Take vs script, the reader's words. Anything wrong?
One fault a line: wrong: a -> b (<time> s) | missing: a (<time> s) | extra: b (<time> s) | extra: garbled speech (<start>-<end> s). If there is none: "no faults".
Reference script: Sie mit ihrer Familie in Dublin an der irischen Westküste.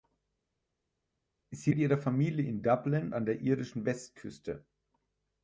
no faults